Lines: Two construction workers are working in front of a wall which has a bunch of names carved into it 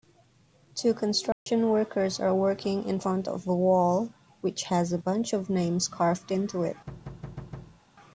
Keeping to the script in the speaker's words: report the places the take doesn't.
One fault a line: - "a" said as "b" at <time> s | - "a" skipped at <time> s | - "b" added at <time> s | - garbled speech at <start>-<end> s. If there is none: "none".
none